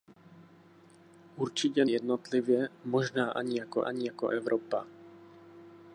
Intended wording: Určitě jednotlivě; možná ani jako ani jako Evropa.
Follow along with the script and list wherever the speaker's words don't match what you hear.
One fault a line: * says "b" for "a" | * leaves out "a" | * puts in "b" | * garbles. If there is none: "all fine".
all fine